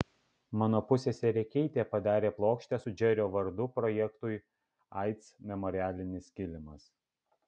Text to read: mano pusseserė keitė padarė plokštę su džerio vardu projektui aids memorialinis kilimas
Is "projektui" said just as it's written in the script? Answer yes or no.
yes